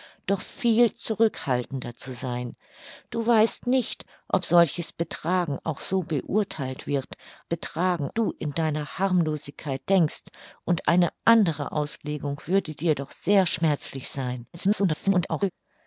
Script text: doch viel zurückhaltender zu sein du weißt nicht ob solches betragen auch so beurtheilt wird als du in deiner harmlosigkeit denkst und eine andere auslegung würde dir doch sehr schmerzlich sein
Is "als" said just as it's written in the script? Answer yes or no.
no